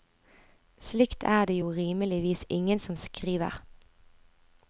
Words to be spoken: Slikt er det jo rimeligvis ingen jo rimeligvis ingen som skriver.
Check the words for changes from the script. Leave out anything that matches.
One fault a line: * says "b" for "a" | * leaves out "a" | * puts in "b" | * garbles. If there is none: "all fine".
* leaves out "jo rimeligvis ingen"